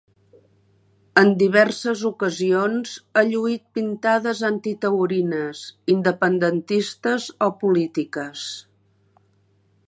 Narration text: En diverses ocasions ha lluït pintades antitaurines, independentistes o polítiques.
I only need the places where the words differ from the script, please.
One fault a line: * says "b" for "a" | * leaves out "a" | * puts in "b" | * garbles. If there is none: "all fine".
all fine